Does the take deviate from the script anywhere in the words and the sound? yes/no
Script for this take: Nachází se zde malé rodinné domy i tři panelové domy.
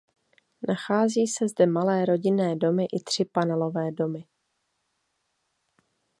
no